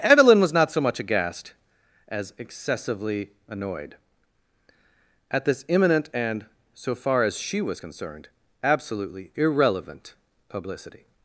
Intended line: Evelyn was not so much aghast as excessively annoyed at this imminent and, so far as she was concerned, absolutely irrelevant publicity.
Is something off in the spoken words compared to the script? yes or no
no